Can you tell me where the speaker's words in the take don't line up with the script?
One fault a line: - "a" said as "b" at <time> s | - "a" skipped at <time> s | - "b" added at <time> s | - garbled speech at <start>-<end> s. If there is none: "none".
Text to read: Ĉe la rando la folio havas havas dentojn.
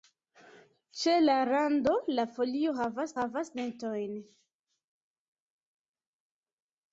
none